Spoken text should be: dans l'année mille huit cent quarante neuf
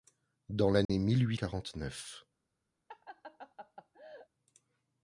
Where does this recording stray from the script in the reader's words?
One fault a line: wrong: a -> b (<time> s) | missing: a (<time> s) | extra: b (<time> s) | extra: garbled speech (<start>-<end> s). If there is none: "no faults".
missing: cent (1.4 s)